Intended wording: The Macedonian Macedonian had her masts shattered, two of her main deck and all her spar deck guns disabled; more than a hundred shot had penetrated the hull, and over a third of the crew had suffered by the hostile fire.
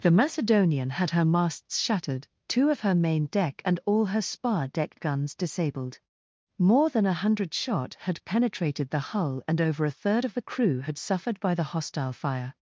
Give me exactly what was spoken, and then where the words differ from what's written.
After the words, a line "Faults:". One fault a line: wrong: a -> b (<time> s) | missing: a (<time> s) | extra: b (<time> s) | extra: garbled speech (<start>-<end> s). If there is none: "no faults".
The Macedonian had her masts shattered, two of her main deck and all her spar deck guns disabled; more than a hundred shot had penetrated the hull, and over a third of the crew had suffered by the hostile fire.
Faults:
missing: Macedonian (0.9 s)